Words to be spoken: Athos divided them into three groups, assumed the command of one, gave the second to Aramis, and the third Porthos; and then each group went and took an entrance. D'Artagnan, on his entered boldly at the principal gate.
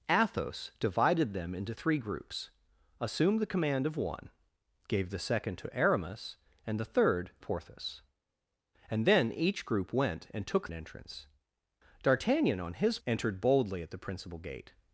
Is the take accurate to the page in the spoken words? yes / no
yes